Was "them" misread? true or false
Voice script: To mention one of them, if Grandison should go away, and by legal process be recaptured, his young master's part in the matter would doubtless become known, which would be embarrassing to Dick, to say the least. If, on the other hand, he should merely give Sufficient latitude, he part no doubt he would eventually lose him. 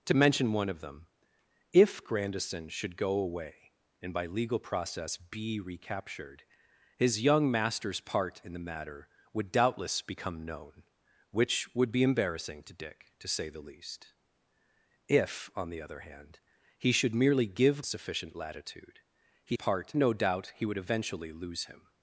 false